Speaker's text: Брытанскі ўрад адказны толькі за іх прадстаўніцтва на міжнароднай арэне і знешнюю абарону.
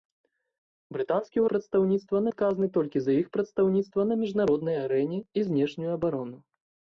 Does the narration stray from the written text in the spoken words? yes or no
yes